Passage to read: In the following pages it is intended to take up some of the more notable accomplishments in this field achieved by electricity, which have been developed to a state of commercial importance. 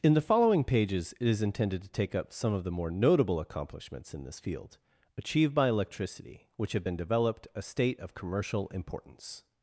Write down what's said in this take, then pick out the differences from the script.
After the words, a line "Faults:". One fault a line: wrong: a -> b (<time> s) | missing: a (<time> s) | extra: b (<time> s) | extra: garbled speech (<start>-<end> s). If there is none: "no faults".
In the following pages it is intended to take up some of the more notable accomplishments in this field achieved by electricity, which have been developed a state of commercial importance.
Faults:
missing: to (7.5 s)